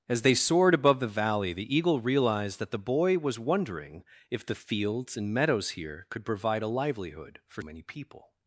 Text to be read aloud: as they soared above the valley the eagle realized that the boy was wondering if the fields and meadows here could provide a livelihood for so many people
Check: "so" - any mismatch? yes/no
yes